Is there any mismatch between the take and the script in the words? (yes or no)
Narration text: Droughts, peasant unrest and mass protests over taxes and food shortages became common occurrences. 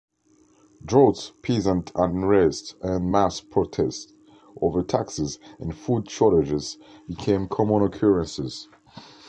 no